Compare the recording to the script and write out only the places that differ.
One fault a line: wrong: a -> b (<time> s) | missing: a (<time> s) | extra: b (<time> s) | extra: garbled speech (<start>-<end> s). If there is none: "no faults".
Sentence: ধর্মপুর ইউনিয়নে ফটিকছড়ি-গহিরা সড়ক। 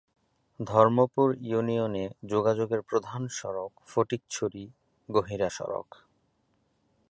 extra: যোগাযোগের প্রধান সড়ক (2.3 s)